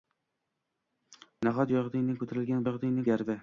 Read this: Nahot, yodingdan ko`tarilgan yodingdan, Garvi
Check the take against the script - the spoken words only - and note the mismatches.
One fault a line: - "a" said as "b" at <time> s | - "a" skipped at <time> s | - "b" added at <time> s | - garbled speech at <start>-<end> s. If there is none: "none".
none